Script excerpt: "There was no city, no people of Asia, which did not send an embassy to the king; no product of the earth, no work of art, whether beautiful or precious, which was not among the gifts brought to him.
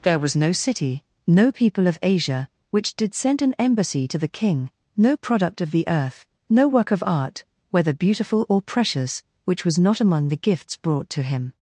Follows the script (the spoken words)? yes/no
no